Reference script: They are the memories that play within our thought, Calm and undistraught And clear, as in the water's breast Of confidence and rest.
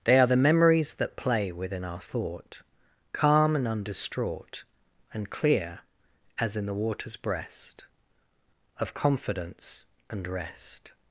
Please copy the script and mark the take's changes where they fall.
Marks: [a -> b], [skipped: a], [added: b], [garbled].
They are the memories that play within our thought, Calm and undistraught And clear, as in the water's breast Of confidence and rest.